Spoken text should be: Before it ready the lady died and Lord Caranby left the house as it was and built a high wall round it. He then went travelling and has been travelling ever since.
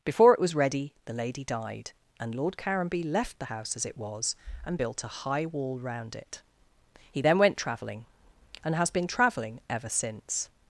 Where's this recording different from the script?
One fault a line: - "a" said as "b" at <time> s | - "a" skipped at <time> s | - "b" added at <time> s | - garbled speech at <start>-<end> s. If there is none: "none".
- "was" added at 0.4 s